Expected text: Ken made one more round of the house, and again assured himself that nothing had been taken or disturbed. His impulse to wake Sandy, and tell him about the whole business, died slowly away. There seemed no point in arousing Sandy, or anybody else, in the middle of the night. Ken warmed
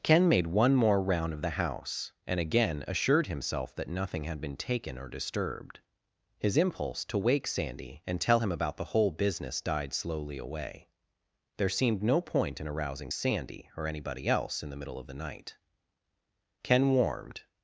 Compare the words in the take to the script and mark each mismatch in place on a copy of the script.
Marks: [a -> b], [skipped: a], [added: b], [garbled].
Ken made one more round of the house, and again assured himself that nothing had been taken or disturbed. His impulse to wake Sandy, and tell him about the whole business, died slowly away. There seemed no point in arousing Sandy, or anybody else, in the middle of the night. Ken warmed